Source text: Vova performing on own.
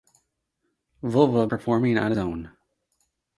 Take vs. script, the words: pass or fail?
pass